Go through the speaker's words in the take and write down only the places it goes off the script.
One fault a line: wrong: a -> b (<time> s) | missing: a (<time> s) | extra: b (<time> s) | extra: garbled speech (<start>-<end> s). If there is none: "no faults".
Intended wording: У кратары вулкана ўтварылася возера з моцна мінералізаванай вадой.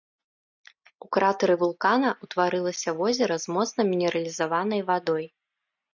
no faults